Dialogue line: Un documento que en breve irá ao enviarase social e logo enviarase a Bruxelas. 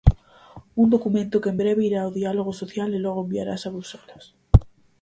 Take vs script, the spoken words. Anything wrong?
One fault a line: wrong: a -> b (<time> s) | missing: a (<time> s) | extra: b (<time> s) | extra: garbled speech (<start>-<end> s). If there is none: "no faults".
wrong: enviarase -> diálogo (2.2 s)